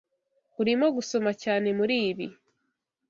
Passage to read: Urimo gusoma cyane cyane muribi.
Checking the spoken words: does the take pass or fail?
fail